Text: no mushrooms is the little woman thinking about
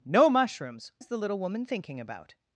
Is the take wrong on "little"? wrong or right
right